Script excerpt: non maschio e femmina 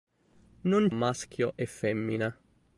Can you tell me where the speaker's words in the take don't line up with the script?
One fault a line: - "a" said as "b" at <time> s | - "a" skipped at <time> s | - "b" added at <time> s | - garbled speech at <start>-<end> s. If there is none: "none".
none